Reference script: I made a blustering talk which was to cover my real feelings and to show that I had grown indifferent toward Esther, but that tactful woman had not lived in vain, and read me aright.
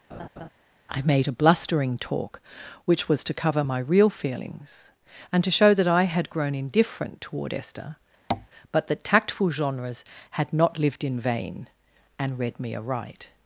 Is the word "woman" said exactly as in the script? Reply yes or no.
no